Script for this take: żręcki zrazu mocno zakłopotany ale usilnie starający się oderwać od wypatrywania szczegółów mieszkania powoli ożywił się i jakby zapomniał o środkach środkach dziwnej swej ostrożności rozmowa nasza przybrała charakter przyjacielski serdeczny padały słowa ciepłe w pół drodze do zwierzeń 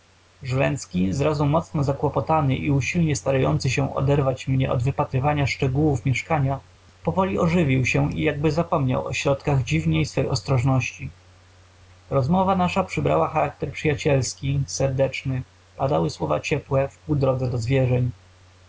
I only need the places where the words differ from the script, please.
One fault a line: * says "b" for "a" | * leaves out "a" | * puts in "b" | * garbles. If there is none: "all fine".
* says "i" for "ale"
* puts in "mnie"
* leaves out "środkach"